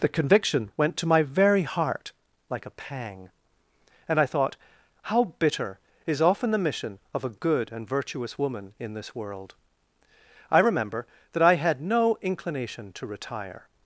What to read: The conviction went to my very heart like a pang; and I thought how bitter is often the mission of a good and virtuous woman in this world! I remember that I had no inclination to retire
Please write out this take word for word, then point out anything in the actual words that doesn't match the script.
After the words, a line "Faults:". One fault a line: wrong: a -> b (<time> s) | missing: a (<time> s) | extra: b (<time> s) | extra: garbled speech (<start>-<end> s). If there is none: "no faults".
The conviction went to my very heart like a pang; and I thought how bitter is often the mission of a good and virtuous woman in this world! I remember that I had no inclination to retire
Faults:
no faults